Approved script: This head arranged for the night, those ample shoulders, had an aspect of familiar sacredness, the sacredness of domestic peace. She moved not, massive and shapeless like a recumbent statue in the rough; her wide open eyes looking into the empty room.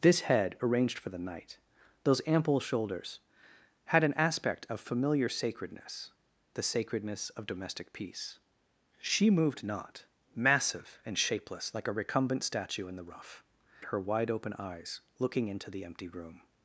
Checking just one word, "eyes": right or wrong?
right